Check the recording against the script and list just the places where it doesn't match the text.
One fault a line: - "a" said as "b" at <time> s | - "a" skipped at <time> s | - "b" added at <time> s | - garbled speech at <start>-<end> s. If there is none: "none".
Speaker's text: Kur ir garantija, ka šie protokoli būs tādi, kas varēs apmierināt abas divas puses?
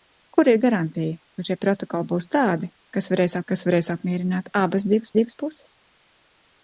- "kas varēs" added at 3.5 s
- "divas" added at 5.2 s